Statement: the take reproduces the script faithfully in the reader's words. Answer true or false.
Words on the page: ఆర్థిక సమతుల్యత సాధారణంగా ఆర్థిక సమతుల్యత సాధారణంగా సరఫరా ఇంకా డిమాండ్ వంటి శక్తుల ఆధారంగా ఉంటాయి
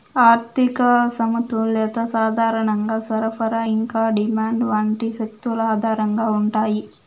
false